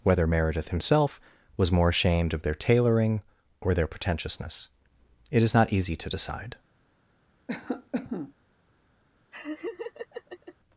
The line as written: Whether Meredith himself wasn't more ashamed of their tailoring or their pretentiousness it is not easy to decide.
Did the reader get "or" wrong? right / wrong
right